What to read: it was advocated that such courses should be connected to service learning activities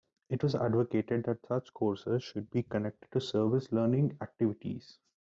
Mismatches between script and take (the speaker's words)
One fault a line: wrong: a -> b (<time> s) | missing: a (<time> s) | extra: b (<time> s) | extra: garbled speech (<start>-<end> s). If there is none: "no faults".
no faults